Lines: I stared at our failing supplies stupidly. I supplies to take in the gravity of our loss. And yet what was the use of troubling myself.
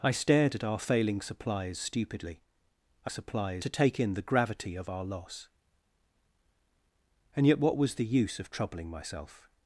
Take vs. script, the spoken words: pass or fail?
pass